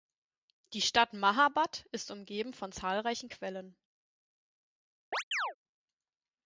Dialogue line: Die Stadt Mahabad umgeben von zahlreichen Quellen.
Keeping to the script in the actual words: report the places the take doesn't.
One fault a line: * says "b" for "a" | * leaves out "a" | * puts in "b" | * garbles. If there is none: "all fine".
* puts in "ist"